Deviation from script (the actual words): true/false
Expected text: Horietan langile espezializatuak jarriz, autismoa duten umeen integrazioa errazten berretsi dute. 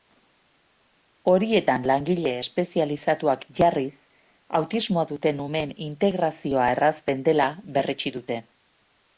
true